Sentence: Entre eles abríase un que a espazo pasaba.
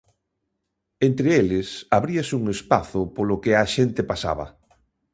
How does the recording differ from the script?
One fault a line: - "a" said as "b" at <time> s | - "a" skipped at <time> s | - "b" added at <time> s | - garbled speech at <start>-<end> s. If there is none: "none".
- "espazo polo" added at 2.5 s
- "espazo" said as "xente" at 3.8 s